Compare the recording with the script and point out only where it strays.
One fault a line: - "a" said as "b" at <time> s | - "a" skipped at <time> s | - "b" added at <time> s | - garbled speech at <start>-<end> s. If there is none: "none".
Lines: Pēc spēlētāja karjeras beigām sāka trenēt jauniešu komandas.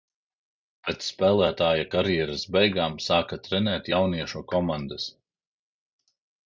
none